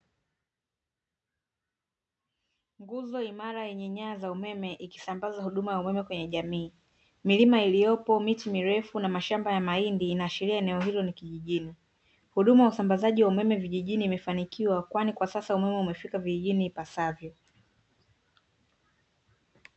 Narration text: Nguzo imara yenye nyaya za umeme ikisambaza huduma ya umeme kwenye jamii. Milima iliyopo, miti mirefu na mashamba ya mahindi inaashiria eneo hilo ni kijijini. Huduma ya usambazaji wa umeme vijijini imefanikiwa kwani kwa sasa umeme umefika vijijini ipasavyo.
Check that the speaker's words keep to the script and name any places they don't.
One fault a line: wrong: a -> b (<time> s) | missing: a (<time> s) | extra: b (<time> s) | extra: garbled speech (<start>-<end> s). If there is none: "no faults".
no faults